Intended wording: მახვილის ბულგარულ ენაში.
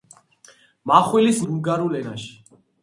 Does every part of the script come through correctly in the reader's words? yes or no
yes